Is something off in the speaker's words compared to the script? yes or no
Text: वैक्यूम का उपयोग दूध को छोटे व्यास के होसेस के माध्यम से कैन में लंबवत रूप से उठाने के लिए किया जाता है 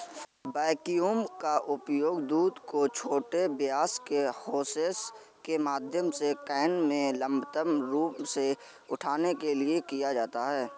no